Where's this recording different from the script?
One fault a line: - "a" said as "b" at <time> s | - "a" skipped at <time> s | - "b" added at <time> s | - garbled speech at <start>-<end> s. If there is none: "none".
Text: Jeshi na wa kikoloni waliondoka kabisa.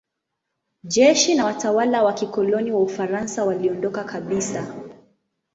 - "watawala" added at 1.4 s
- "wa Ufaransa" added at 2.7 s